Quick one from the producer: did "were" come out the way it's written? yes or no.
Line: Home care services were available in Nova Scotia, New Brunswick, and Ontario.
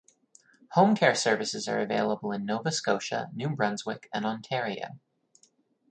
no